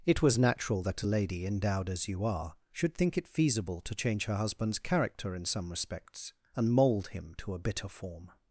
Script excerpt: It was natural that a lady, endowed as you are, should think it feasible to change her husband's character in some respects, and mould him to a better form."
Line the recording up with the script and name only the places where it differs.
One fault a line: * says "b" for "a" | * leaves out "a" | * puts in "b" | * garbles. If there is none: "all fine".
* says "bitter" for "better"